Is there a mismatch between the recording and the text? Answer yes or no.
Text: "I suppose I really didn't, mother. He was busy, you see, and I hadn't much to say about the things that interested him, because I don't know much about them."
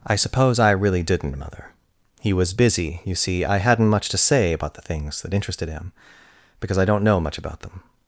yes